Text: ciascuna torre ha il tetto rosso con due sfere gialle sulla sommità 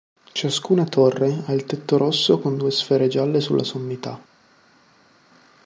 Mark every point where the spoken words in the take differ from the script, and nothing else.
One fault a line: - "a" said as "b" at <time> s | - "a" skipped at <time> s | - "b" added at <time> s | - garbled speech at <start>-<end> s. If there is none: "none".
none